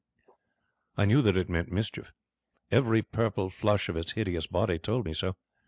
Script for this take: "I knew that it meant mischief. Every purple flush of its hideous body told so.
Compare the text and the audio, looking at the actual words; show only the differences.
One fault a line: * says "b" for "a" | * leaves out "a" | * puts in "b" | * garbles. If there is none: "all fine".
* puts in "me"